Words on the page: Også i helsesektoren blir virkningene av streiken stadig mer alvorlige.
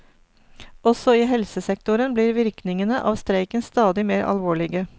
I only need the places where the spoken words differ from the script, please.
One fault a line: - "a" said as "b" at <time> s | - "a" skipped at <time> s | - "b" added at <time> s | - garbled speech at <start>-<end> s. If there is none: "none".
none